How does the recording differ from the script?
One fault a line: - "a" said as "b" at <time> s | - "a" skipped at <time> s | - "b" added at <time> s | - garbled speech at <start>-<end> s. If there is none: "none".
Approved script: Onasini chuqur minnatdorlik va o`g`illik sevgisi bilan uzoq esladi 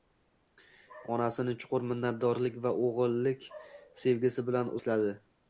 - "uzoq" skipped at 4.8 s